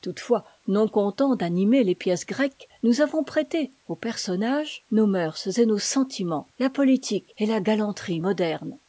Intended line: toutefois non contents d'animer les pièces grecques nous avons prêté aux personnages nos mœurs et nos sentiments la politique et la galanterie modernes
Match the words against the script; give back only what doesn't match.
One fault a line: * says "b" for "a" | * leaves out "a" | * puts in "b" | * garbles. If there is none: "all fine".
all fine